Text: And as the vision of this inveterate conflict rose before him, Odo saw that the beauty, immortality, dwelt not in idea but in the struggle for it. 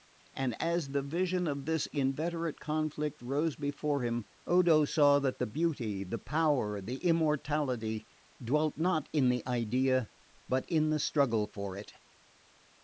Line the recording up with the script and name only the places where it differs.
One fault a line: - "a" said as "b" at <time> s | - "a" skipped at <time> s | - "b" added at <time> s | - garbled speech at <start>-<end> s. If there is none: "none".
- "the power the" added at 6.0 s
- "the" added at 9.3 s